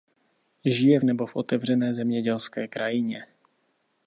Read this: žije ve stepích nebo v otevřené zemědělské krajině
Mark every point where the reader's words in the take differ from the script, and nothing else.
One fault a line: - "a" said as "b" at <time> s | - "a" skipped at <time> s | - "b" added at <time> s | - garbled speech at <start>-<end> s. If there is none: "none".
- "ve stepích" skipped at 1.0 s